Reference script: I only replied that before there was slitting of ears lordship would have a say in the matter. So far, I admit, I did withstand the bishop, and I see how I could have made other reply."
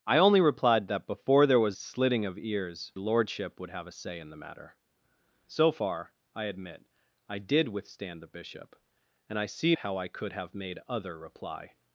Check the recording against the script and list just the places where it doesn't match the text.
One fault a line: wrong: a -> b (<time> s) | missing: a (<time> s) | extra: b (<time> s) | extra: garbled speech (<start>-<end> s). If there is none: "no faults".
no faults